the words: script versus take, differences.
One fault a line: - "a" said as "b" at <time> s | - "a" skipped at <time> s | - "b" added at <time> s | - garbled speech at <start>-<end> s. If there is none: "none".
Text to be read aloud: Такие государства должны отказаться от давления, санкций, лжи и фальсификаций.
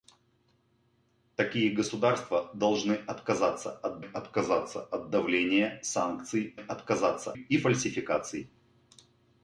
- "отказаться от" added at 4.0 s
- "лжи" said as "отказаться" at 6.5 s